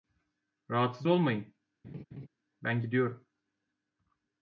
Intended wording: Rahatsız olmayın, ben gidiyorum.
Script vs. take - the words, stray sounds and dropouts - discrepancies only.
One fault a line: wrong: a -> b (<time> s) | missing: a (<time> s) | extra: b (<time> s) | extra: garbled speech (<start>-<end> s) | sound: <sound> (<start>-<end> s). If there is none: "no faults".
sound: laugh (1.8-2.3 s)